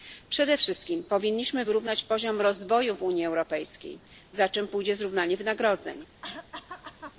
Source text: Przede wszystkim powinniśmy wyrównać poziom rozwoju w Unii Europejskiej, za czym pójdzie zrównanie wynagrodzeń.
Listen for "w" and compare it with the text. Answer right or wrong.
right